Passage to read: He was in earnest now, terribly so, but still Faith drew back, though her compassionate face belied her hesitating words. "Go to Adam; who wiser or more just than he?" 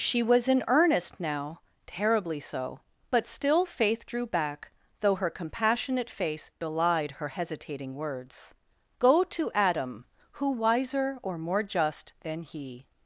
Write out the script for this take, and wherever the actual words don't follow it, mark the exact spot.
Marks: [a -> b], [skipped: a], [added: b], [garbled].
[He -> She] was in earnest now, terribly so, but still Faith drew back, though her compassionate face belied her hesitating words. "Go to Adam; who wiser or more just than he?"